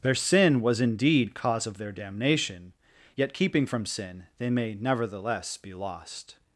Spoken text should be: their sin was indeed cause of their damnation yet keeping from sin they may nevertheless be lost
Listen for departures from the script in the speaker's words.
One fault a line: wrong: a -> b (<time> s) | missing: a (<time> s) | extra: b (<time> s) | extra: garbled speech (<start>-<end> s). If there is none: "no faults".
no faults